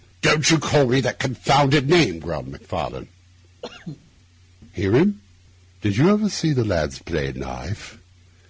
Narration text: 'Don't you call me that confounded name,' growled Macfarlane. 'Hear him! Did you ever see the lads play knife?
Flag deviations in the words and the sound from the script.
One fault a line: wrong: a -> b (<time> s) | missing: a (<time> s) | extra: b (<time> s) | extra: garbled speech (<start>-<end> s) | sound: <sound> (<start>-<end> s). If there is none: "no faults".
sound: cough (3.6-4.1 s)